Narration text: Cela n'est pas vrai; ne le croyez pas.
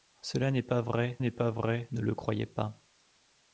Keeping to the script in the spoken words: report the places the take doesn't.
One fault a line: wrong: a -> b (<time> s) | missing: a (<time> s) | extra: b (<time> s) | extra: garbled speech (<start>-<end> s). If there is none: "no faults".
extra: n'est pas vrai (1.2 s)